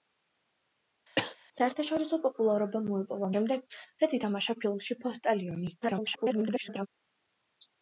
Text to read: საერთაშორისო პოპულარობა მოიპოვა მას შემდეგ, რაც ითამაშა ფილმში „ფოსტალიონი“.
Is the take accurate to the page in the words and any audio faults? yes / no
no